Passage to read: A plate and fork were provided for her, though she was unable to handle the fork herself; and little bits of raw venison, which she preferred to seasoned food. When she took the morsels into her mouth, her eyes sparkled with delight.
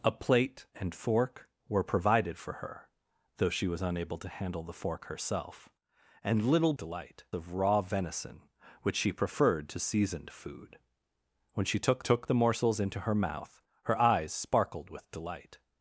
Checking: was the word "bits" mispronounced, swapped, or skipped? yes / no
yes